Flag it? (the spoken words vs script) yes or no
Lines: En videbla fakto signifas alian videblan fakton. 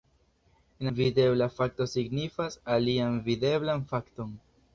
no